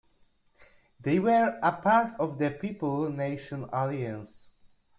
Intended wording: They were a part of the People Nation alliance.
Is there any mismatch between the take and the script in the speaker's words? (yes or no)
no